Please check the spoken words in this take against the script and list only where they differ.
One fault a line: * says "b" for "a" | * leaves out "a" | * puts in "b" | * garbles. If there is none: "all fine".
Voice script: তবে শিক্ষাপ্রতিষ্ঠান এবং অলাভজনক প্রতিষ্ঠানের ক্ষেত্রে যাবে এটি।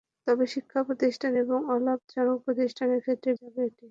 all fine